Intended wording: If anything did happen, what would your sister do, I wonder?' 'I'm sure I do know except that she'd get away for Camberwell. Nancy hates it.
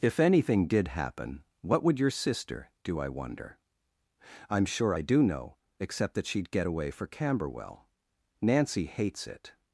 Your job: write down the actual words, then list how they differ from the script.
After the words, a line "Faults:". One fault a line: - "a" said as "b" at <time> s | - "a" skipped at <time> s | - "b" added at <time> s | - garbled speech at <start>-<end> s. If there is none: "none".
If anything did happen, what would your sister do, I wonder?' 'I'm sure I do know except that she'd get away for Camberwell. Nancy hates it.
Faults:
none